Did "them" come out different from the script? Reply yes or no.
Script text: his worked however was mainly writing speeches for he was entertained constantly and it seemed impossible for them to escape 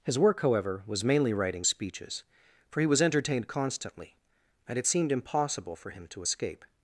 yes